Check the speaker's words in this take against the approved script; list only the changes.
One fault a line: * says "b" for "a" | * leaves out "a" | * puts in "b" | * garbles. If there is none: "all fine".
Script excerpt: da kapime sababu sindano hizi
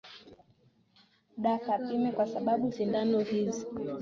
* puts in "kwa"